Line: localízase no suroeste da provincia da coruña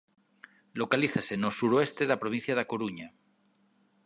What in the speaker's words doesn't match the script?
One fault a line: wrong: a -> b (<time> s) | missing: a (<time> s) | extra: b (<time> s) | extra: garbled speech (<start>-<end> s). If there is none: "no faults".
no faults